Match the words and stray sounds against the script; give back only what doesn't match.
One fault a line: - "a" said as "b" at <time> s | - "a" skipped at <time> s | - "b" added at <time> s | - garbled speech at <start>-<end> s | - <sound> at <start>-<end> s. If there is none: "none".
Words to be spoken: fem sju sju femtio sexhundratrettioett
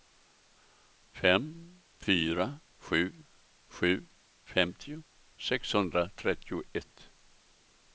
- "fyra" added at 2.0 s